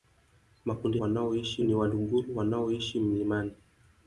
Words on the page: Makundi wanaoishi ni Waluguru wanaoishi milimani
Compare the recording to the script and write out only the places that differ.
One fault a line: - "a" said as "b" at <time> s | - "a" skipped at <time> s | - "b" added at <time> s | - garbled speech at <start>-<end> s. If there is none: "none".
none